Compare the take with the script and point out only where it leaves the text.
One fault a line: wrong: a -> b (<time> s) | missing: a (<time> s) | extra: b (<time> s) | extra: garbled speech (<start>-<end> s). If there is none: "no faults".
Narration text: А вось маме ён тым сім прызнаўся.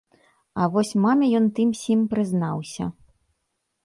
no faults